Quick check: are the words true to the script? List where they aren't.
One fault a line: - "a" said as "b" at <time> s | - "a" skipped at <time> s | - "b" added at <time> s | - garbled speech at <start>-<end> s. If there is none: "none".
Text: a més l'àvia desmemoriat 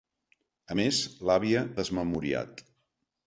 none